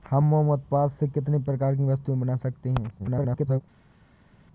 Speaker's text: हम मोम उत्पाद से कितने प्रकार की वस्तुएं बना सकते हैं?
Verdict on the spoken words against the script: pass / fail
fail